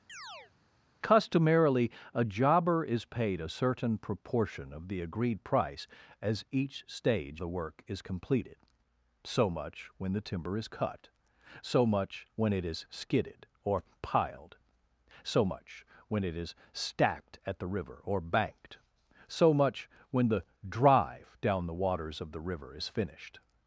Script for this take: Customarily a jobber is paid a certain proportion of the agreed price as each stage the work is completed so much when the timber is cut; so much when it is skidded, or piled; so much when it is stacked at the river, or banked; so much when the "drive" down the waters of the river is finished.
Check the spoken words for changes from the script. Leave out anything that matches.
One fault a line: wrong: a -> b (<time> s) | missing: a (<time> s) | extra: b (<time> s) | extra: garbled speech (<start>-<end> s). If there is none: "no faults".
no faults